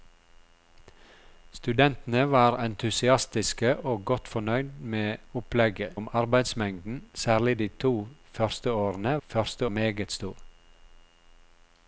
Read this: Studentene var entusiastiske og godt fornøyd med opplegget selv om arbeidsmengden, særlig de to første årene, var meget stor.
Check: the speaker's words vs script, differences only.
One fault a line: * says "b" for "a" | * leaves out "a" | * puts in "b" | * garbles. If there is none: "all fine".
* leaves out "selv"
* says "første" for "var"